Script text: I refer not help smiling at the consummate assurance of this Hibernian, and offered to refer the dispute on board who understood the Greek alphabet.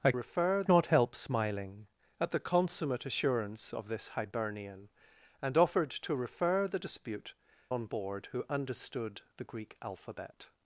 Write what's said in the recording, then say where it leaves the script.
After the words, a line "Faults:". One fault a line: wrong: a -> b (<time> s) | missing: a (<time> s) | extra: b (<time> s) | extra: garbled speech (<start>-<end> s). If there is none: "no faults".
I refer not help smiling at the consummate assurance of this Hibernian, and offered to refer the dispute on board who understood the Greek alphabet.
Faults:
no faults